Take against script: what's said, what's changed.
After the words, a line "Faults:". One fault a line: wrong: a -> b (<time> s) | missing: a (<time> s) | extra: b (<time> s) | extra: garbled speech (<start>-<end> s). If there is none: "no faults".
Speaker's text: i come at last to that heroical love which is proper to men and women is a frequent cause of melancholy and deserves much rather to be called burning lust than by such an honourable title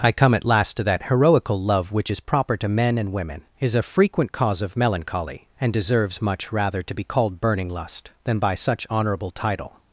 i come at last to that heroical love which is proper to men and women is a frequent cause of melancholy and deserves much rather to be called burning lust than by such honourable title
Faults:
missing: an (8.9 s)